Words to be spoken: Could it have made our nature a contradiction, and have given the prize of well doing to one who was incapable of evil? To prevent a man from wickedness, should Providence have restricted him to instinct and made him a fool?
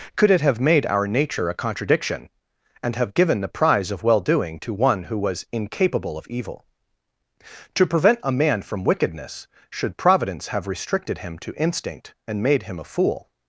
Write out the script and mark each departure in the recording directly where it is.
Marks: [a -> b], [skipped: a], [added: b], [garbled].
Could it have made our nature a contradiction, and have given the prize of well doing to one who was incapable of evil? To prevent a man from wickedness, should Providence have restricted him to instinct and made him a fool?